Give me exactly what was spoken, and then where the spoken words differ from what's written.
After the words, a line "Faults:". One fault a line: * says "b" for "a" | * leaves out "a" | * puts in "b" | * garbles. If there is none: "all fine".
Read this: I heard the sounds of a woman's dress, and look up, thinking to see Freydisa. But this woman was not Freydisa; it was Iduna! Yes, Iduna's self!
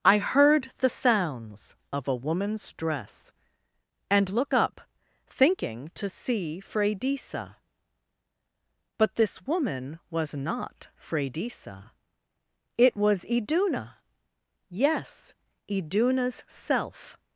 I heard the sounds of a woman's dress, and look up, thinking to see Freydisa. But this woman was not Freydisa; it was Iduna! Yes, Iduna's self!
Faults:
all fine